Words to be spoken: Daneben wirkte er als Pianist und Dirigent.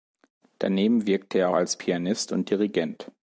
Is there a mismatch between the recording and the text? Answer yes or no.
no